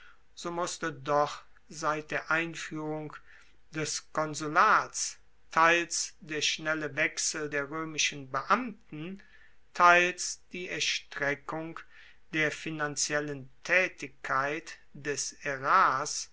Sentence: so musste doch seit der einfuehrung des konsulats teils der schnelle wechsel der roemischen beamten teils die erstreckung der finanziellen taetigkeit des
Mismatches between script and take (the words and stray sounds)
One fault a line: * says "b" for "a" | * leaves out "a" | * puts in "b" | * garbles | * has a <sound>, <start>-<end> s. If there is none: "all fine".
all fine